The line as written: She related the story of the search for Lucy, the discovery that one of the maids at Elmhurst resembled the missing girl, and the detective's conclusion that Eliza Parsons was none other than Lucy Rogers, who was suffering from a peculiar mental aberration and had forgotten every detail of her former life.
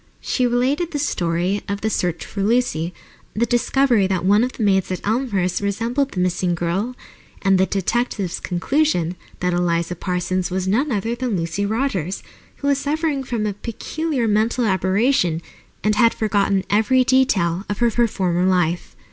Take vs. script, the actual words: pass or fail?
fail